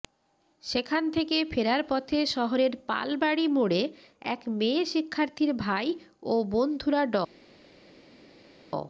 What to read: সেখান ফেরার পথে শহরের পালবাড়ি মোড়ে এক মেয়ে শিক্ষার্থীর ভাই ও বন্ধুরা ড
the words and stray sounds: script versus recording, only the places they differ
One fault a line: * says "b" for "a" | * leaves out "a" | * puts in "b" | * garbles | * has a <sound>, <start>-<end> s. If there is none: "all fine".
* puts in "থেকে"